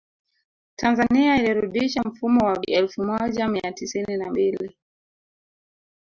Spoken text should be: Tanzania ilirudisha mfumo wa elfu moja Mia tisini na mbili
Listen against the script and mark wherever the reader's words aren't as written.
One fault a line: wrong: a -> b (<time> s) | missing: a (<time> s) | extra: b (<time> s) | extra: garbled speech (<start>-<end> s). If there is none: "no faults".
no faults